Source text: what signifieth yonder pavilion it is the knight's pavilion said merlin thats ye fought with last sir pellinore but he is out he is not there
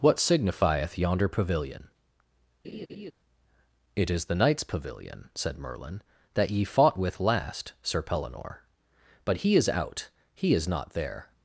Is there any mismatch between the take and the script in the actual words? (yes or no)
yes